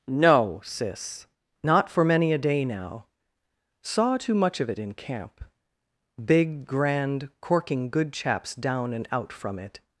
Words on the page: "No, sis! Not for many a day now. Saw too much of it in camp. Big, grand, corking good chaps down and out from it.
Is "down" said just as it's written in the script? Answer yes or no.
yes